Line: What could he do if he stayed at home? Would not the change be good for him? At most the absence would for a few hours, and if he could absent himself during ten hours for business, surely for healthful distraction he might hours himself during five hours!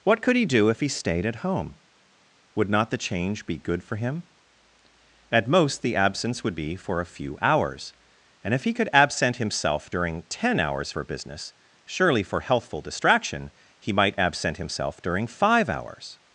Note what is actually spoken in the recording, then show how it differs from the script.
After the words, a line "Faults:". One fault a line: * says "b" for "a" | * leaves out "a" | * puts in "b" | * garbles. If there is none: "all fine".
What could he do if he stayed at home? Would not the change be good for him? At most the absence would be for a few hours, and if he could absent himself during ten hours for business, surely for healthful distraction he might absent himself during five hours!
Faults:
* puts in "be"
* says "absent" for "hours"